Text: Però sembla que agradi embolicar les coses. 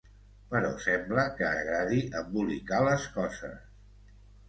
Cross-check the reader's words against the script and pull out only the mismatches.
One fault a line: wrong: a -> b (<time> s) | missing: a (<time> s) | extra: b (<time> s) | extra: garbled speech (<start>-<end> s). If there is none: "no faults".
no faults